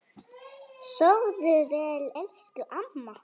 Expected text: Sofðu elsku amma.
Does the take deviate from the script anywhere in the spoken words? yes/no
yes